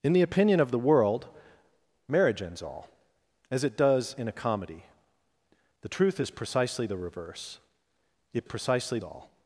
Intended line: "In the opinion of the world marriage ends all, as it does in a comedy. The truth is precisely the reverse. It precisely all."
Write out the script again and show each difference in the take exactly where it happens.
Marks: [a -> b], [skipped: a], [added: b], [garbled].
"In the opinion of the world marriage ends all, as it does in a comedy. The truth is precisely the reverse. It precisely all."